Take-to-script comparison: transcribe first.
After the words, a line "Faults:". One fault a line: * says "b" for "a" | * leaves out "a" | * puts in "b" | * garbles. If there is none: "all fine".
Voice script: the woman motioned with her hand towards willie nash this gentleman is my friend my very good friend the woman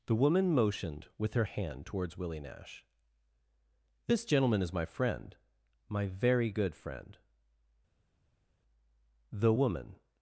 the woman motioned with her hand towards willie nash this gentleman is my friend my very good friend the woman
Faults:
all fine